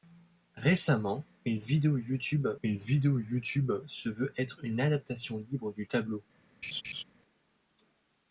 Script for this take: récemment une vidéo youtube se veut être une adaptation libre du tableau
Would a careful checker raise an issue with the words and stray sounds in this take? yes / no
yes